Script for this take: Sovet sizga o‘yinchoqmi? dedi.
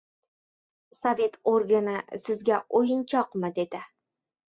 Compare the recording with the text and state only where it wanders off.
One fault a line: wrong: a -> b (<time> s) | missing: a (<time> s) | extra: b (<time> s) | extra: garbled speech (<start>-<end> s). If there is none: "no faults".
extra: organi (1.5 s)